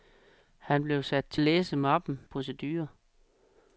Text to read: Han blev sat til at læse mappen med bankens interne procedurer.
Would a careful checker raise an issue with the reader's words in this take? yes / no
yes